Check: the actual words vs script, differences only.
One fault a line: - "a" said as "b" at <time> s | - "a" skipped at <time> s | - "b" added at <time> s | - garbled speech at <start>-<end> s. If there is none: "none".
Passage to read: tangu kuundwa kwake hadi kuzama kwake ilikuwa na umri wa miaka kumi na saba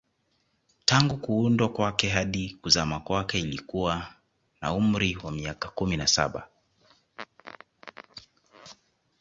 none